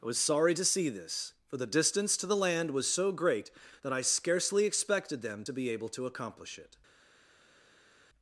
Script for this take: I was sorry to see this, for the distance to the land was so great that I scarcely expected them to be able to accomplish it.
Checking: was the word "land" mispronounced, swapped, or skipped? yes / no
no